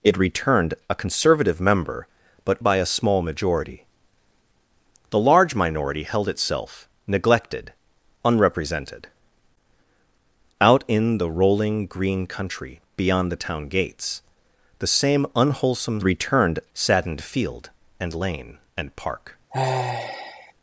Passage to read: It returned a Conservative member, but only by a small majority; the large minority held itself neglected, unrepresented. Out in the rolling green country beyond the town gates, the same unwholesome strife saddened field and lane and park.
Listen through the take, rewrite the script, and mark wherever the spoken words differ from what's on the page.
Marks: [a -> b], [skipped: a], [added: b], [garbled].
It returned a Conservative member, but [skipped: only] by a small majority; the large minority held itself neglected, unrepresented. Out in the rolling green country beyond the town gates, the same unwholesome [strife -> returned] saddened field and lane and park.